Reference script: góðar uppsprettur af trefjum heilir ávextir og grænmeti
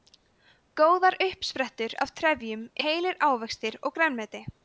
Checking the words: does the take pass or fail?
pass